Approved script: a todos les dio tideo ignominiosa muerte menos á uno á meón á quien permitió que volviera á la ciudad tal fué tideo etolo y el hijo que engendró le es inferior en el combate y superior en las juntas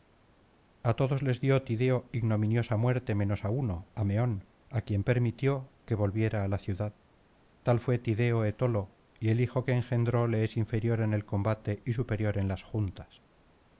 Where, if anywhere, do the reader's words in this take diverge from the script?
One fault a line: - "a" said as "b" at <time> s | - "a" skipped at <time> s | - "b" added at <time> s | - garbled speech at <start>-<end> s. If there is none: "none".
none